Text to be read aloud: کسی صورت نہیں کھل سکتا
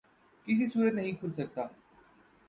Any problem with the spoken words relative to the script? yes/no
no